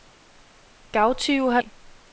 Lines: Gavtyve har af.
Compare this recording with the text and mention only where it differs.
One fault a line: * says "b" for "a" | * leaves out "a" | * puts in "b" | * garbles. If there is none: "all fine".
all fine